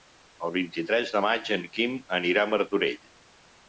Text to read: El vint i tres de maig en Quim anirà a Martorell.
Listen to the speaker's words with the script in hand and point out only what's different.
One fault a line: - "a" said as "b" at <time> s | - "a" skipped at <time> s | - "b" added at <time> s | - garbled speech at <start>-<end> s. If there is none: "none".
none